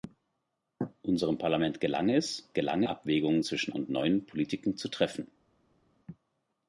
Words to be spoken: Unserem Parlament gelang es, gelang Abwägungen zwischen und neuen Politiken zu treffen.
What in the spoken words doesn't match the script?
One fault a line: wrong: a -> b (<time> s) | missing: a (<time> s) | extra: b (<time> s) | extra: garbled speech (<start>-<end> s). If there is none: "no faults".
no faults